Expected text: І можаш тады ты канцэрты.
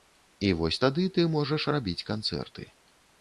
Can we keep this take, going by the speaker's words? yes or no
no